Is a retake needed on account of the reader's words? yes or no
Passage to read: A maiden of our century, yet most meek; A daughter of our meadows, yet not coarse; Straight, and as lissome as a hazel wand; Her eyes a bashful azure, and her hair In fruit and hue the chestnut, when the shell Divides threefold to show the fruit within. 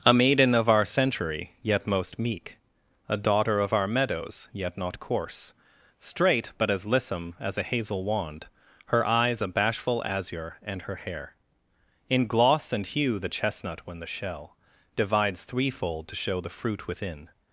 yes